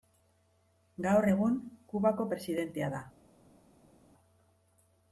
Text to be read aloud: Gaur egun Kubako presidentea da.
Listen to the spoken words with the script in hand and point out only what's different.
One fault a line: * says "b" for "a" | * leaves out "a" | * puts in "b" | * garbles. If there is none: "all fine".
all fine